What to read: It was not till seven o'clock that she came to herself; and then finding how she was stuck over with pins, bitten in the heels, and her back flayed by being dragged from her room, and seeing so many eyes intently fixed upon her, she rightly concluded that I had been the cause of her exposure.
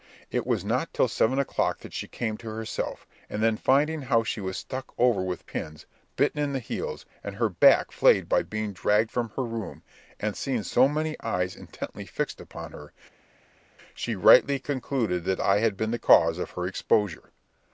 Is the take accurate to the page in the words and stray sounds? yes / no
yes